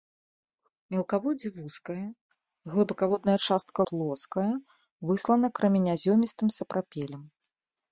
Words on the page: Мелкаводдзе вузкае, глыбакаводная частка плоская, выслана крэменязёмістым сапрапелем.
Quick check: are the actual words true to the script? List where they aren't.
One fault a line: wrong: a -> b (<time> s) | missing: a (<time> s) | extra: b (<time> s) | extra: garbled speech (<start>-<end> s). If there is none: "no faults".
no faults